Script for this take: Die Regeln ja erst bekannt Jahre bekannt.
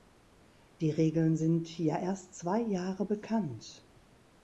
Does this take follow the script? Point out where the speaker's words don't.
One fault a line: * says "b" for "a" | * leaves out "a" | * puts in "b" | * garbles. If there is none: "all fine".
* puts in "sind"
* says "zwei" for "bekannt"